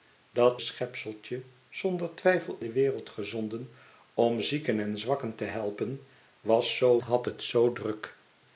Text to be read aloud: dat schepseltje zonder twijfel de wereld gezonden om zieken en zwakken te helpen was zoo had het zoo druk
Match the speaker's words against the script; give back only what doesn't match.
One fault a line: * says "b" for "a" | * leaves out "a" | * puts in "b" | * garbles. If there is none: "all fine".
all fine